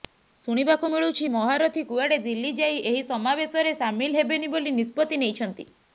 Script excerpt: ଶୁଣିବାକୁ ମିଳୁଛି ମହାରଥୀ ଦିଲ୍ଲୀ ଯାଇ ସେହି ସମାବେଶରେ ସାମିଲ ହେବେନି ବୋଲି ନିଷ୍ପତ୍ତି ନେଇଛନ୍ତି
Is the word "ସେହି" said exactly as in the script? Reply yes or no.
no